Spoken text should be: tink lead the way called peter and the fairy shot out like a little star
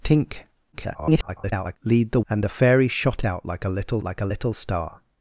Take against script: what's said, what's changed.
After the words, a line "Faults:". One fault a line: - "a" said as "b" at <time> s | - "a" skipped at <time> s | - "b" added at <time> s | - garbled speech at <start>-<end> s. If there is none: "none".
tink [garbled] lead the and the fairy shot out like a little like a little star
Faults:
- garbled speech at 0.7-1.8 s
- "way called peter" skipped at 2.2 s
- "like a little" added at 4.0 s